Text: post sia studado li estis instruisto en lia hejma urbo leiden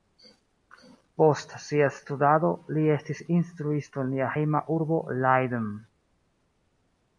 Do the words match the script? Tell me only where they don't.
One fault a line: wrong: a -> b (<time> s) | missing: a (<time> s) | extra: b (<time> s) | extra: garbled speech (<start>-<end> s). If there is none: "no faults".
no faults